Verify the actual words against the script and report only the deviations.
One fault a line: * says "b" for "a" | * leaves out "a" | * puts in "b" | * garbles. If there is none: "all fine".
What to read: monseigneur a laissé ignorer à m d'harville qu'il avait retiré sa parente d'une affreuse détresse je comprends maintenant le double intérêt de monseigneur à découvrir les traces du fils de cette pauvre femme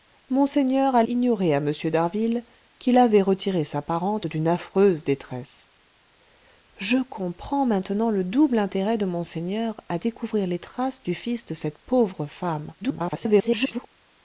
* leaves out "laissé"
* garbles